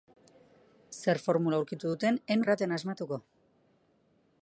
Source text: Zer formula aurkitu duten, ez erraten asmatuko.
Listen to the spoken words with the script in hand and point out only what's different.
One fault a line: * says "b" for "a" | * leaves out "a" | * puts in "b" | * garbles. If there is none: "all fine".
all fine